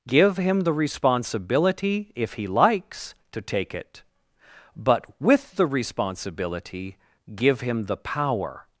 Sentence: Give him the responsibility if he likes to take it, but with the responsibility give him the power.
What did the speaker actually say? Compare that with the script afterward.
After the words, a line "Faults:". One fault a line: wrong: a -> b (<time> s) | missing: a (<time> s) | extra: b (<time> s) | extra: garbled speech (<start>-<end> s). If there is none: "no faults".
Give him the responsibility if he likes to take it, but with the responsibility give him the power.
Faults:
no faults